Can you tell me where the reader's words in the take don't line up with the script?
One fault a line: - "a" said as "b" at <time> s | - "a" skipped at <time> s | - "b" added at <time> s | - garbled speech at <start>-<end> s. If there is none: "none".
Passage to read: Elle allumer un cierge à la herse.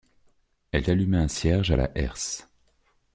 none